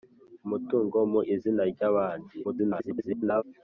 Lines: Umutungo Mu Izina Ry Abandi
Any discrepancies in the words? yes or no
yes